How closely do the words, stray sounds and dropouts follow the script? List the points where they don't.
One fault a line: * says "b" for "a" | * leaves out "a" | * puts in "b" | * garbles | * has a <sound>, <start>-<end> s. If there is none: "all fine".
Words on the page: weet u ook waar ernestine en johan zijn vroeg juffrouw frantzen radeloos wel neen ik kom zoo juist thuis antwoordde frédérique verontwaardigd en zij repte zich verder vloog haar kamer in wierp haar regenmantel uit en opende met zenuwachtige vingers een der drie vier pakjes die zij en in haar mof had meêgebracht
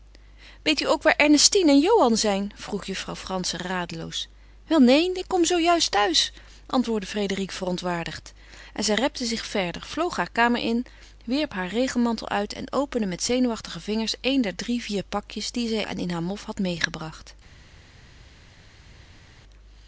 all fine